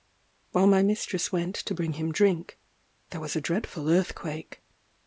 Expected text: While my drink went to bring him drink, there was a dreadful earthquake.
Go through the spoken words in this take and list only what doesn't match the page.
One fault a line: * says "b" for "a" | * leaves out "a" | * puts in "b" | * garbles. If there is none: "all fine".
* says "mistress" for "drink"